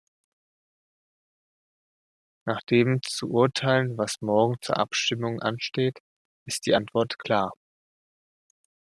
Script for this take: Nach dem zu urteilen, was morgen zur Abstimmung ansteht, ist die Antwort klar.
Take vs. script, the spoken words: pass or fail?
pass